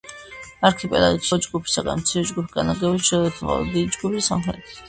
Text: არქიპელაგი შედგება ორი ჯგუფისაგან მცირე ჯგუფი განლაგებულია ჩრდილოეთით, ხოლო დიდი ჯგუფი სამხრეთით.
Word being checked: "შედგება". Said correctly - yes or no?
no